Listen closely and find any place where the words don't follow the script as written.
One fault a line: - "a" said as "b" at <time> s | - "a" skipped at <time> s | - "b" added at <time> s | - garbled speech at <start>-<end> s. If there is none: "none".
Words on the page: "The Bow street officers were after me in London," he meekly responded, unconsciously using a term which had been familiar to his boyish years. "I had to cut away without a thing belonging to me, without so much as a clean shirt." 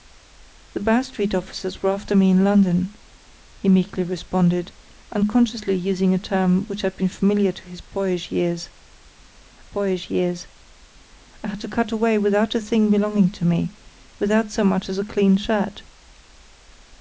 - "boyish years" added at 9.6 s